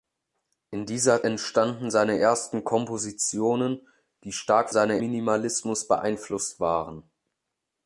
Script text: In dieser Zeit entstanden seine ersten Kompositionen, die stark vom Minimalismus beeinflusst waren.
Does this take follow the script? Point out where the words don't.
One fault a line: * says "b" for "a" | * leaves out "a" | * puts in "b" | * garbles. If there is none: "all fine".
* leaves out "Zeit"
* says "seine" for "vom"